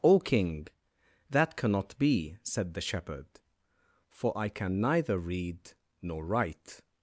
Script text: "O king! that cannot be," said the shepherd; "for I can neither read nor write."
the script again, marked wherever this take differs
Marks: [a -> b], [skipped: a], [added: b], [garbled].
"O king! that cannot be," said the shepherd; "for I can neither read nor write."